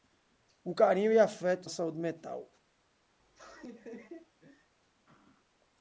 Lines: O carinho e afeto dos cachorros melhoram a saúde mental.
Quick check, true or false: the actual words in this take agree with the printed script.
false